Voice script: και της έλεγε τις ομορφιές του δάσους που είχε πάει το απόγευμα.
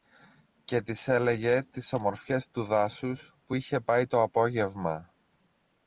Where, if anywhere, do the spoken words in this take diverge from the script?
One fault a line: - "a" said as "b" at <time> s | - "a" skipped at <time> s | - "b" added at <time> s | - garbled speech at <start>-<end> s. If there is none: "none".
none